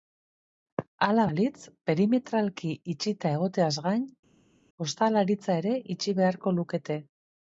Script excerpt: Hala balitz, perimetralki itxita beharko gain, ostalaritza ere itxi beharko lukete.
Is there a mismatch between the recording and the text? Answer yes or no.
yes